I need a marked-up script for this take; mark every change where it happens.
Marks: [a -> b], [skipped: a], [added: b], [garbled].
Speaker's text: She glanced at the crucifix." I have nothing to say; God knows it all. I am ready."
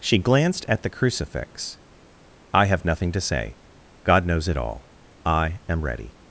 She glanced at the crucifix." I have nothing to say; God knows it all. I am ready."